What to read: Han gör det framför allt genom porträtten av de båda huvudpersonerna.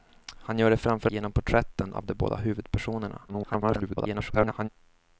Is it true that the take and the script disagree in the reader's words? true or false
true